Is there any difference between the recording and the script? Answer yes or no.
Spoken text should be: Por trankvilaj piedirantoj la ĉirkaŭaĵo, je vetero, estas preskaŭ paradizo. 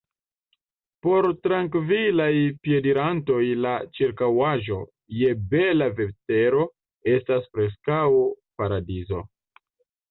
yes